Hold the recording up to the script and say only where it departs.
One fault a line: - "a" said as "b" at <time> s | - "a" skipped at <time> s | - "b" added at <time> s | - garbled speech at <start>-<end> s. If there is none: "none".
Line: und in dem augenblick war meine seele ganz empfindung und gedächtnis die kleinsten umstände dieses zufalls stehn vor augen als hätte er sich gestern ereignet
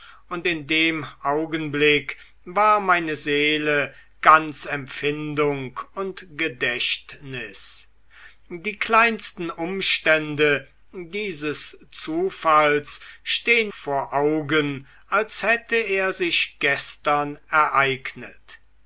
none